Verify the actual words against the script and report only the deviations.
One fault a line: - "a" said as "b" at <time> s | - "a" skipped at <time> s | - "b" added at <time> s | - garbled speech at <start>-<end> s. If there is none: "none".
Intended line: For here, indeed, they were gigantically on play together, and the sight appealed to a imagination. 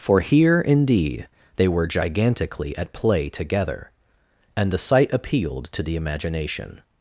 - "on" said as "at" at 2.8 s
- "a" said as "the" at 5.8 s